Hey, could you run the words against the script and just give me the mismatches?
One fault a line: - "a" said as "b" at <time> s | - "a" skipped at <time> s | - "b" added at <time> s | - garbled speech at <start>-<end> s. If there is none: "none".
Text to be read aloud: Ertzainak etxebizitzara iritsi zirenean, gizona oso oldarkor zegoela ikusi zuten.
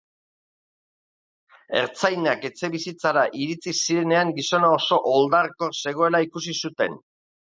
none